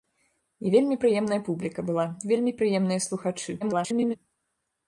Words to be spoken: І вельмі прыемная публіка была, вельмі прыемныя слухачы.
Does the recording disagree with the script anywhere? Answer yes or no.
yes